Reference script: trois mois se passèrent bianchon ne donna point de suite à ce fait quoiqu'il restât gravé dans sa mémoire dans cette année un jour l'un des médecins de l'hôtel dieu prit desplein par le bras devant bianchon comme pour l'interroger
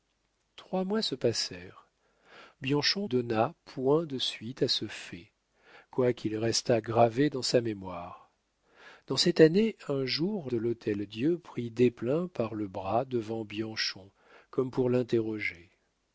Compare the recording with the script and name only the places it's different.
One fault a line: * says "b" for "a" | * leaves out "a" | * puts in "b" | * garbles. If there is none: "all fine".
* leaves out "ne"
* leaves out "l'un des médecins"